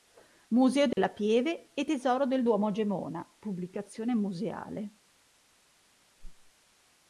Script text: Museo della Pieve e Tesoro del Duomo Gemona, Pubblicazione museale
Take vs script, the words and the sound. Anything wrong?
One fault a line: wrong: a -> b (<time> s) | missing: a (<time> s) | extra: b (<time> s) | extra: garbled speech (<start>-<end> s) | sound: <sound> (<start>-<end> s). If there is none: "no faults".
sound: dropout (0.9-1.0 s)
sound: whoosh (6.2-6.5 s)